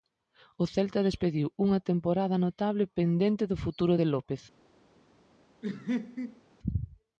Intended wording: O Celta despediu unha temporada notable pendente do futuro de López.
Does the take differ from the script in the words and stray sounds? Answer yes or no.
yes